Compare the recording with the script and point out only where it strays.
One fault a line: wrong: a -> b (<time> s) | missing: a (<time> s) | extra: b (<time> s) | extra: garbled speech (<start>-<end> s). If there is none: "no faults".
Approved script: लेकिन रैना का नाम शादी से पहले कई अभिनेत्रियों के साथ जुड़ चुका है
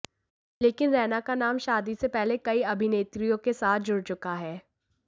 no faults